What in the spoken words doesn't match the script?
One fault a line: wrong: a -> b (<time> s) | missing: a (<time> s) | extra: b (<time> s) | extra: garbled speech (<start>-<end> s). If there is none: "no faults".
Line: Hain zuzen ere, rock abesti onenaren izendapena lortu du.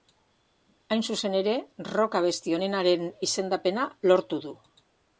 no faults